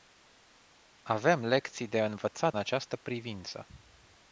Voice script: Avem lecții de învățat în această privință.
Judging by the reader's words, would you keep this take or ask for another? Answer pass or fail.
fail